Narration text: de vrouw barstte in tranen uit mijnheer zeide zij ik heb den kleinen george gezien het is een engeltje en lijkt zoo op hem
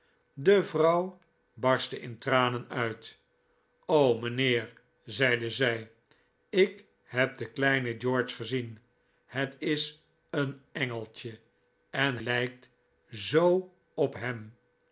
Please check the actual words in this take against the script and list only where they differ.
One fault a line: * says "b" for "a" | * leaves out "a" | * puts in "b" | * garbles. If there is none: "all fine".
all fine